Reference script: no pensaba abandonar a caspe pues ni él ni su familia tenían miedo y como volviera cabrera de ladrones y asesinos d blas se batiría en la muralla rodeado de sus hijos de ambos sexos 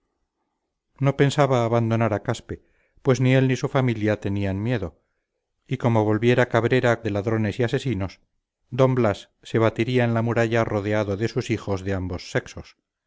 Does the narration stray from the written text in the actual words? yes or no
no